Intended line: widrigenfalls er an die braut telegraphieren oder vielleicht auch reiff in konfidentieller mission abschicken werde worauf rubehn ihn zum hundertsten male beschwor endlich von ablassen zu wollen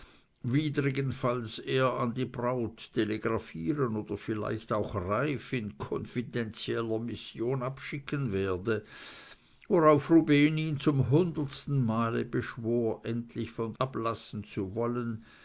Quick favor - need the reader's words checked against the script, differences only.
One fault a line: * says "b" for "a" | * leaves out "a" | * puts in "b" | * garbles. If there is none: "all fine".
all fine